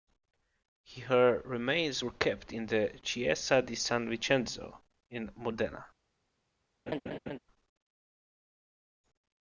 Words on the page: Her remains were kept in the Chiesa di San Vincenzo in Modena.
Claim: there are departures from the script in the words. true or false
false